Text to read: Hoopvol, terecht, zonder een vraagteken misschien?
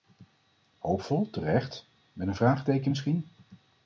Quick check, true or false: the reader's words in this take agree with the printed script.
false